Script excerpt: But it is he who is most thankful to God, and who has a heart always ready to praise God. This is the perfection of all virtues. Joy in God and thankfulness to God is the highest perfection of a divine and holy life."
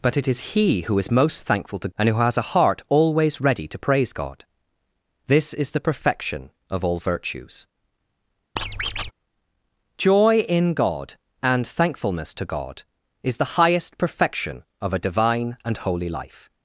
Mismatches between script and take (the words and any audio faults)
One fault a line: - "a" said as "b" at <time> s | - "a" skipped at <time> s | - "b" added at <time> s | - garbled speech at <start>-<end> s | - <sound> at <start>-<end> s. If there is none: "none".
- "God" skipped at 1.9 s
- squeak at 8.6-9.1 s